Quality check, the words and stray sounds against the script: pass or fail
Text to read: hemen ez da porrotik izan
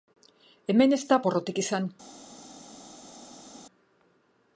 pass